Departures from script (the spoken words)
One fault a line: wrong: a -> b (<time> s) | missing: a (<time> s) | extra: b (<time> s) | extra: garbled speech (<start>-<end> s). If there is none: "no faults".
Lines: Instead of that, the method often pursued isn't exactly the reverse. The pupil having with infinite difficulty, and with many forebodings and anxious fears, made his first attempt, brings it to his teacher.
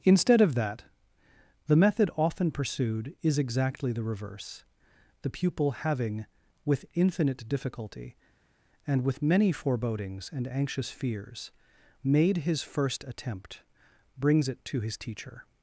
wrong: isn't -> is (3.2 s)